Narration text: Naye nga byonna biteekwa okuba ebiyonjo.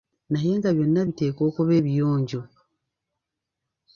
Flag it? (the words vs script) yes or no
no